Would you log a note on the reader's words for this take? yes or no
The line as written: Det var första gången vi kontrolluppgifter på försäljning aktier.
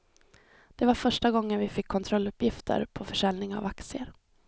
yes